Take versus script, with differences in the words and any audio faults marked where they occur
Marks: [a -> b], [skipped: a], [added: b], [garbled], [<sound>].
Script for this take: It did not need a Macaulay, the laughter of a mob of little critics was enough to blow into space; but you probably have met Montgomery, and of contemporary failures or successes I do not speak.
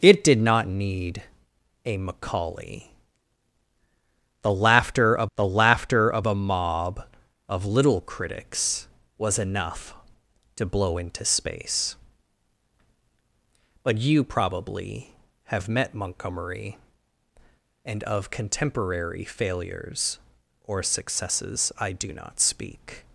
It did not need a Macaulay, the laughter of [added: the laughter of] a mob of little critics was enough to blow into space; but you probably have met Montgomery, and of contemporary failures or successes I do not speak.